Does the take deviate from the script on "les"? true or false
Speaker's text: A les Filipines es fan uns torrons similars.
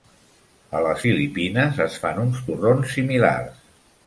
false